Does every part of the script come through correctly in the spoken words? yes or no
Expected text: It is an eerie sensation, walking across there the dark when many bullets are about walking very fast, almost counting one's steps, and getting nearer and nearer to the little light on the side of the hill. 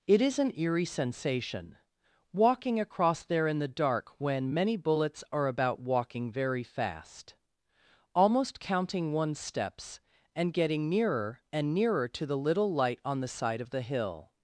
no